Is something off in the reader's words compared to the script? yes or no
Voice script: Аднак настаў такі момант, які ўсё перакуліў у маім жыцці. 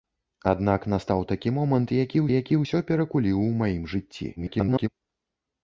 yes